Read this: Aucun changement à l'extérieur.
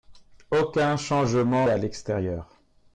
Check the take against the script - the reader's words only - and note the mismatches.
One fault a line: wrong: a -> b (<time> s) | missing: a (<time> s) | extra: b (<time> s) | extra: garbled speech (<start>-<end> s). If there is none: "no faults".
no faults